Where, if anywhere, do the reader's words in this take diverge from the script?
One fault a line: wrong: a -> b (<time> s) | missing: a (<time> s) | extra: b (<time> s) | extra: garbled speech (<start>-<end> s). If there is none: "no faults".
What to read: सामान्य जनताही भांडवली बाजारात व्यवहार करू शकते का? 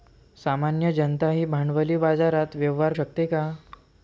missing: करू (2.9 s)